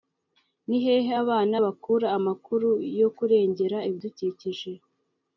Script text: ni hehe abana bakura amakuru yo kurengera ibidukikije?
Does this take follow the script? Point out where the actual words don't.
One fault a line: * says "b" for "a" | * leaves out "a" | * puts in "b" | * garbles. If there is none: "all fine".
all fine